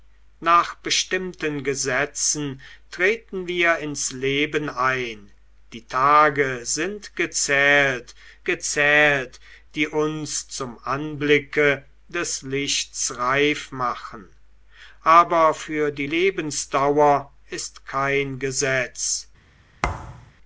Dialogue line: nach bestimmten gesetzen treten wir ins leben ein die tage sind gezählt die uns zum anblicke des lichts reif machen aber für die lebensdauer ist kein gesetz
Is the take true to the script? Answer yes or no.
no